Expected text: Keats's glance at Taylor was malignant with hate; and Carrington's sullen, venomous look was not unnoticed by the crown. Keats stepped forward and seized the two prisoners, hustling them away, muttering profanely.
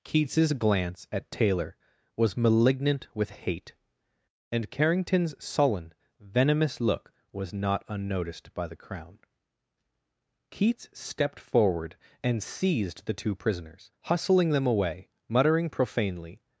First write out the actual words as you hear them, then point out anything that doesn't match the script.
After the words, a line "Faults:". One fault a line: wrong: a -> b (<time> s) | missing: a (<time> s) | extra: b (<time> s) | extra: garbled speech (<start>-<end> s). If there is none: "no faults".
Keats's glance at Taylor was malignant with hate; and Carrington's sullen, venomous look was not unnoticed by the crown. Keats stepped forward and seized the two prisoners, hustling them away, muttering profanely.
Faults:
no faults